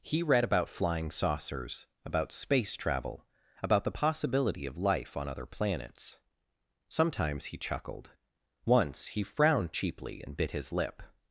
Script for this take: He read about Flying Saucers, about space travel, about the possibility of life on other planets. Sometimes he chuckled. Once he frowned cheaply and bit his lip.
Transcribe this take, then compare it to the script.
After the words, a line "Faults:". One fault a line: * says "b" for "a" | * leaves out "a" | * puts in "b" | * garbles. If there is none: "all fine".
He read about Flying Saucers, about space travel, about the possibility of life on other planets. Sometimes he chuckled. Once he frowned cheaply and bit his lip.
Faults:
all fine